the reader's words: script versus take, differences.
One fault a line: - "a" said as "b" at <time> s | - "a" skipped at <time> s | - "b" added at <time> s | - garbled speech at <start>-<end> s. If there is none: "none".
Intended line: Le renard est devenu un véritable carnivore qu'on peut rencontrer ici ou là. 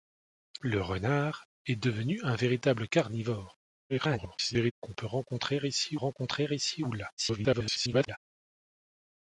- garbled speech at 3.9-4.7 s
- "rencontrer ici" added at 5.9 s
- garbled speech at 7.2-8.2 s